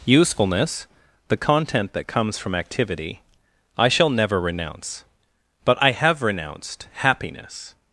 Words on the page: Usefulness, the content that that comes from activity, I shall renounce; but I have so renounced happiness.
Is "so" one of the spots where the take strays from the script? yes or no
yes